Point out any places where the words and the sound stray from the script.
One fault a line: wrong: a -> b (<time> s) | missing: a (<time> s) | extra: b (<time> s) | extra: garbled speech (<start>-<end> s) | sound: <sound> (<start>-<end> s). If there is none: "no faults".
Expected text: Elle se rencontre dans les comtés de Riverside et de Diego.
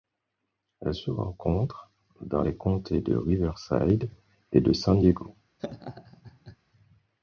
extra: San (4.7 s)
sound: laugh (5.6-6.6 s)